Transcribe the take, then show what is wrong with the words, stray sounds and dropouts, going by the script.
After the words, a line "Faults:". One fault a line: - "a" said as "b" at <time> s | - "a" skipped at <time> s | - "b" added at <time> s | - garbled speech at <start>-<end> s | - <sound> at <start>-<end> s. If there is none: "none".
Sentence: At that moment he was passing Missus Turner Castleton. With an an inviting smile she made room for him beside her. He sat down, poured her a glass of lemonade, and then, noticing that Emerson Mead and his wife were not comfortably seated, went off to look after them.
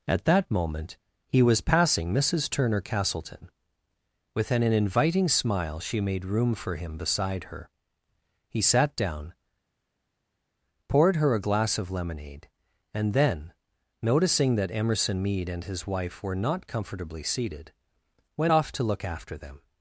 At that moment he was passing Missus Turner Castleton. With an an inviting smile she made room for him beside her. He sat down, poured her a glass of lemonade, and then, noticing that Emerson Mead and his wife were not comfortably seated, went off to look after them.
Faults:
none